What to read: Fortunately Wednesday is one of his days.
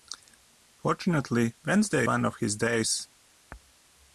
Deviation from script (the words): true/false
true